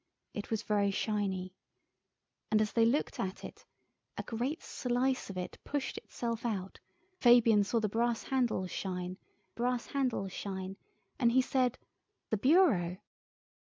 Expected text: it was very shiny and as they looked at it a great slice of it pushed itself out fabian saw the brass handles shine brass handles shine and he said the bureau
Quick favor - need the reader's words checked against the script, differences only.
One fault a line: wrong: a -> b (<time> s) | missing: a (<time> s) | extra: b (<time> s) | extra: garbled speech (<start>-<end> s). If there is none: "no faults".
no faults